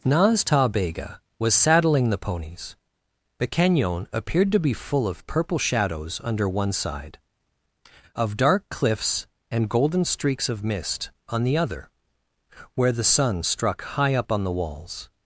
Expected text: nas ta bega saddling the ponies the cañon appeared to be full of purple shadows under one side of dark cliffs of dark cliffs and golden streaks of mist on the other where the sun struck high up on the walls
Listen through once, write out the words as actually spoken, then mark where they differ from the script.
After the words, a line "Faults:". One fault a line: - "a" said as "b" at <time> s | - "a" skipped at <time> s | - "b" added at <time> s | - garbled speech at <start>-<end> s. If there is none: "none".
nas ta bega was saddling the ponies the cañon appeared to be full of purple shadows under one side of dark cliffs and golden streaks of mist on the other where the sun struck high up on the walls
Faults:
- "was" added at 1.4 s
- "of dark cliffs" skipped at 9.3 s